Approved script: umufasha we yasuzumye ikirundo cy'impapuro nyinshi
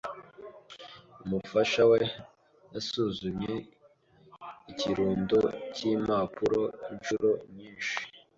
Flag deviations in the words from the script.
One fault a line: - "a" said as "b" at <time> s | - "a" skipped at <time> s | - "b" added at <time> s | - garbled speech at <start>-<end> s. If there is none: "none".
- "inshuro" added at 6.9 s